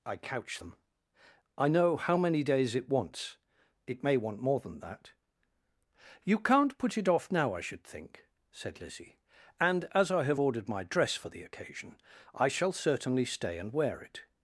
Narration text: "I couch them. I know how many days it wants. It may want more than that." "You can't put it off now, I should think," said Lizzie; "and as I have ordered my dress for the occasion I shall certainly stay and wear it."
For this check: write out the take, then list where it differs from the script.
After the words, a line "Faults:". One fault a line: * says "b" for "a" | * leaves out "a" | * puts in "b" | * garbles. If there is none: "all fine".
"I couch them. I know how many days it wants. It may want more than that." "You can't put it off now, I should think," said Lizzie; "and as I have ordered my dress for the occasion I shall certainly stay and wear it."
Faults:
all fine